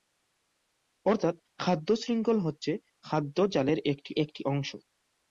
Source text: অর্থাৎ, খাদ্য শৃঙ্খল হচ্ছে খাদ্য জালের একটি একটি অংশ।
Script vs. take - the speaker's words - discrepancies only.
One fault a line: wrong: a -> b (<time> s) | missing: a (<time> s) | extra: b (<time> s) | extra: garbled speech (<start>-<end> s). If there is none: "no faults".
no faults